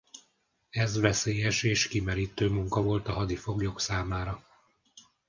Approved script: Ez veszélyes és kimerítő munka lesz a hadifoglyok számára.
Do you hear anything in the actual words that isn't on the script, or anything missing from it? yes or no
yes